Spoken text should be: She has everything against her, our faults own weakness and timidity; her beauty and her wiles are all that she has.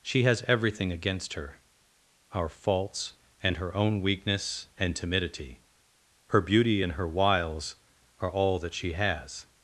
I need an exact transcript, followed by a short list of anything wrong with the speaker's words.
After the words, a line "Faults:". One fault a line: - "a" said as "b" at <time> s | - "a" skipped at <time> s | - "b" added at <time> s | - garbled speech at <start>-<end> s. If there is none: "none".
She has everything against her, our faults and her own weakness and timidity; her beauty and her wiles are all that she has.
Faults:
- "and her" added at 3.4 s